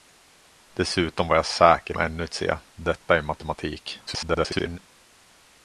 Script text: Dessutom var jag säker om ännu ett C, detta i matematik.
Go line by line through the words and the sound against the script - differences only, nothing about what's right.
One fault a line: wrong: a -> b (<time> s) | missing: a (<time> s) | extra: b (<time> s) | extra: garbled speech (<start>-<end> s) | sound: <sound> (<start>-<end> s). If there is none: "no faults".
missing: om (2.0 s)
extra: garbled speech (4.1-4.8 s)